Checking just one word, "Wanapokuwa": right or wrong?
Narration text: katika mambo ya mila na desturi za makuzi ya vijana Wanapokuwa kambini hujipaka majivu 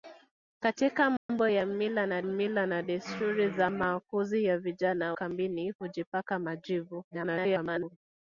wrong